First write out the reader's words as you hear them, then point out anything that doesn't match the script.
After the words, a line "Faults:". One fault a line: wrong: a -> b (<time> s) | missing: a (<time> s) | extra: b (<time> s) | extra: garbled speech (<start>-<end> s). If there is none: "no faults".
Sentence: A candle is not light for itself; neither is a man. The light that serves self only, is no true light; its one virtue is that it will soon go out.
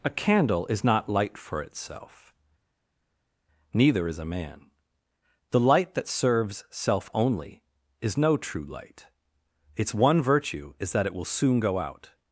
A candle is not light for itself; neither is a man. The light that serves self only, is no true light; its one virtue is that it will soon go out.
Faults:
no faults